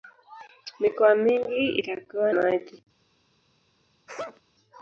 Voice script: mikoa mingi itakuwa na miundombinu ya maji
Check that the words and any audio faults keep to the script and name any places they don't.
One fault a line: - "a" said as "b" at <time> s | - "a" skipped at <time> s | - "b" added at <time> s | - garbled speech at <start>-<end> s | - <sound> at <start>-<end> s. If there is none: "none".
- "na miundombinu ya" skipped at 2.3 s
- sneeze at 4.1-4.4 s